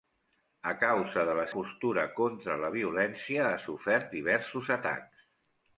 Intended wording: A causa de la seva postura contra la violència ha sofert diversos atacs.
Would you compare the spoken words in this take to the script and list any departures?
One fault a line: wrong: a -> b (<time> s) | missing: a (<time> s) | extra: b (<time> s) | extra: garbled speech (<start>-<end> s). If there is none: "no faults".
missing: seva (1.4 s)